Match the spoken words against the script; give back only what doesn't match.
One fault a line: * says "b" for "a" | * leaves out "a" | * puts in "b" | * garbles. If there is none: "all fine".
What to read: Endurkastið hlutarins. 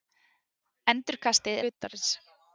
all fine